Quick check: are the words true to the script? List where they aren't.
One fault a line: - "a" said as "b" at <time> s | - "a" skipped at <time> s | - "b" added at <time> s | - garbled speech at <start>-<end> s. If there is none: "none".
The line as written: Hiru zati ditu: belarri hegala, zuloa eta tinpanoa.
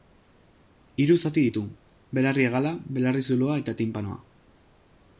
- "belarri" added at 3.0 s